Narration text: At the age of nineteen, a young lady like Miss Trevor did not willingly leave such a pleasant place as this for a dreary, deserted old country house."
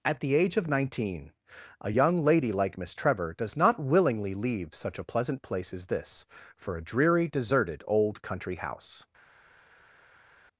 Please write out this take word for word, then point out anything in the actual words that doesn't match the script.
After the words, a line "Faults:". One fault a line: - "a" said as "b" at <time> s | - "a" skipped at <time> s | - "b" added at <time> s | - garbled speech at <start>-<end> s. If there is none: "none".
At the age of nineteen, a young lady like Miss Trevor does not willingly leave such a pleasant place as this for a dreary, deserted old country house."
Faults:
- "did" said as "does" at 3.3 s